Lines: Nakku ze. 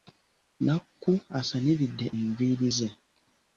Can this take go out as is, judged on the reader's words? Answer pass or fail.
fail